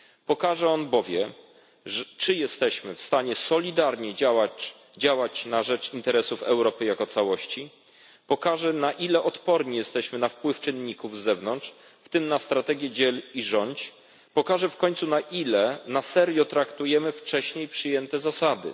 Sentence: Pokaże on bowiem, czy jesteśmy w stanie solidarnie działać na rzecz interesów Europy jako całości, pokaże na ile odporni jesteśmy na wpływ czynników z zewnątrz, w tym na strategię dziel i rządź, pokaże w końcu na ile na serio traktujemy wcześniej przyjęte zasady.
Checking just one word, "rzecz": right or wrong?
right